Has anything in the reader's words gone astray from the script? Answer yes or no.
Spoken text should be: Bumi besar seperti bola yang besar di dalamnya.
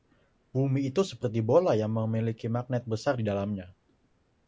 yes